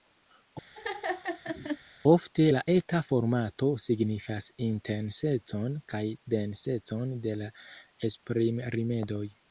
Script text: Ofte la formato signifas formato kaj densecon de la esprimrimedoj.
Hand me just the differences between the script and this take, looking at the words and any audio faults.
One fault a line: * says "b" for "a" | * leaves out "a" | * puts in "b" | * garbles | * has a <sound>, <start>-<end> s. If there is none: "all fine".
* has a laugh, 0.7-1.8 s
* puts in "eta"
* says "intensecon" for "formato"